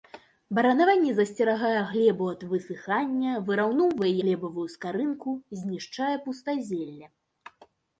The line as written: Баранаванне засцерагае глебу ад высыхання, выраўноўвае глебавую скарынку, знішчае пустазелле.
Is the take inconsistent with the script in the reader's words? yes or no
no